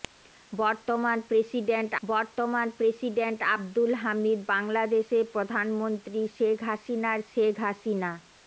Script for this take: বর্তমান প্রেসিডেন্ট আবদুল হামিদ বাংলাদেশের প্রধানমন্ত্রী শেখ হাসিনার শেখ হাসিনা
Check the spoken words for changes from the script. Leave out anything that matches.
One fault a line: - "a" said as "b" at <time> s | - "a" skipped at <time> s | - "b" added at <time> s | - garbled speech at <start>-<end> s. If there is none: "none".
- "বর্তমান প্রেসিডেন্ট" added at 2.0 s